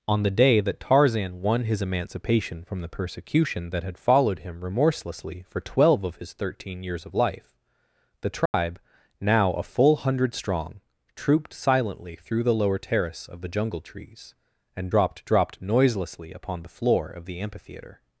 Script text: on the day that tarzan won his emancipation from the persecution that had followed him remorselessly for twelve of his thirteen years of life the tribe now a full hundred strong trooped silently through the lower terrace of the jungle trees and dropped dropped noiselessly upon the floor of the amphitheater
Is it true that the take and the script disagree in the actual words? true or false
false